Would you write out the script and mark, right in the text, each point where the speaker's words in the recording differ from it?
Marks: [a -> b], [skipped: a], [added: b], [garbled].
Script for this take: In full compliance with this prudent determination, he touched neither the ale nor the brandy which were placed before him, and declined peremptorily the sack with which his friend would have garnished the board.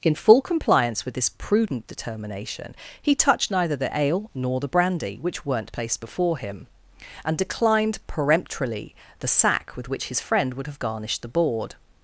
In full compliance with this prudent determination, he touched neither the ale nor the brandy which [were -> weren't] placed before him, and declined peremptorily the sack with which his friend would have garnished the board.